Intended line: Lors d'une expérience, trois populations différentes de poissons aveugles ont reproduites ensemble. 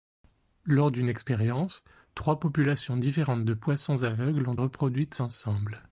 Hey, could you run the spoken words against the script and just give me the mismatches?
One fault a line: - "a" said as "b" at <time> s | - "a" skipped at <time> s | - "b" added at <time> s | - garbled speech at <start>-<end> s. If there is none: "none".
none